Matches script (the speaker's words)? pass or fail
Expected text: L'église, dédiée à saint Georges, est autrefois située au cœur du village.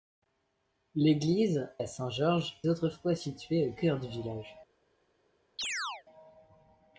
fail